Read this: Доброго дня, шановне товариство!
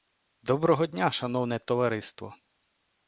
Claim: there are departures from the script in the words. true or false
false